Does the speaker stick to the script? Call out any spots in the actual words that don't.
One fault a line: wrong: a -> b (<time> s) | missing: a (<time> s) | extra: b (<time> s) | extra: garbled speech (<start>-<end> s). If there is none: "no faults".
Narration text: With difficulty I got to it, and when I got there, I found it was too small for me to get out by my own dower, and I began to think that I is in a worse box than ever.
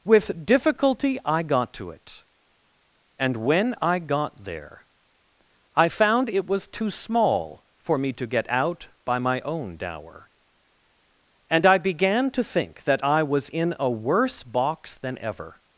wrong: is -> was (13.2 s)